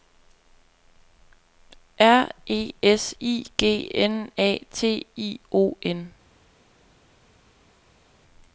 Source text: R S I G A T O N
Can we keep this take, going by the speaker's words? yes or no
no